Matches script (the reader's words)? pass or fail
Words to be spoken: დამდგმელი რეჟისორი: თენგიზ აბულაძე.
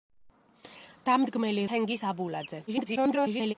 fail